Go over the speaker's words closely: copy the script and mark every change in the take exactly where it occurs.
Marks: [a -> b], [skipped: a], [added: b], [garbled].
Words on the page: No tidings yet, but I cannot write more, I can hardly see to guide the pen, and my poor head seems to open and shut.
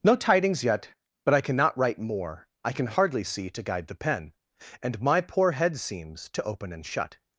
No tidings yet, but I cannot write more, I can hardly see to guide the pen, and my poor head seems to open and shut.